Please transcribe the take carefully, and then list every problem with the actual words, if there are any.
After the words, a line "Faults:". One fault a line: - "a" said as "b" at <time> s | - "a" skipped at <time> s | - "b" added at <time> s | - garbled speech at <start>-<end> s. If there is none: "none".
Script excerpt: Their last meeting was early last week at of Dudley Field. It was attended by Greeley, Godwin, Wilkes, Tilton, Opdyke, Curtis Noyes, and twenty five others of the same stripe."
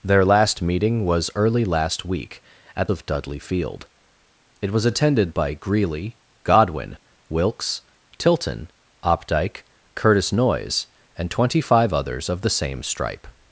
Their last meeting was early last week at of Dudley Field. It was attended by Greeley, Godwin, Wilkes, Tilton, Opdyke, Curtis Noyes, and twenty five others of the same stripe."
Faults:
none